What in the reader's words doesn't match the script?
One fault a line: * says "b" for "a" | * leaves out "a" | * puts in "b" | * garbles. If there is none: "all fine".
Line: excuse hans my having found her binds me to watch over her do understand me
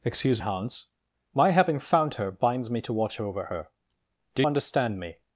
all fine